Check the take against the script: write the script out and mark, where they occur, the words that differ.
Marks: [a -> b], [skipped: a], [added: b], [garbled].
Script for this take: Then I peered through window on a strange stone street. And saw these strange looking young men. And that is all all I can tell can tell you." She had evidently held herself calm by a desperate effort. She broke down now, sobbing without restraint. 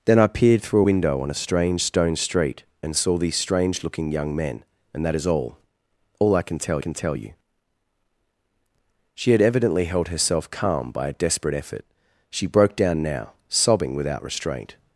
Then I peered through window on a strange stone street. And saw these strange looking young men. And that is all all I can tell can tell you." She had evidently held herself calm by a desperate effort. She broke down now, sobbing without restraint.